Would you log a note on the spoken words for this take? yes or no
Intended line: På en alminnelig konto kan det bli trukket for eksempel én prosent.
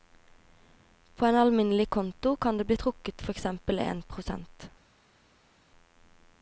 no